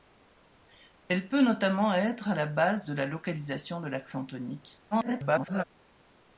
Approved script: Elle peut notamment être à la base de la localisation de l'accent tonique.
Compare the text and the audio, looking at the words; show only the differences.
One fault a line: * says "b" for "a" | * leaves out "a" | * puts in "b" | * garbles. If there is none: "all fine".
* garbles